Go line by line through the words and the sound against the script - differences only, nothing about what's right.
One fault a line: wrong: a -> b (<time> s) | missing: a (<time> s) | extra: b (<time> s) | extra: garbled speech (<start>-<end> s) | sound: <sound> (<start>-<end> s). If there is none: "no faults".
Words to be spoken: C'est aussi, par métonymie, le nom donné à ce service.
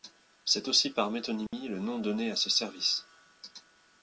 sound: dropout (1.5-1.5 s)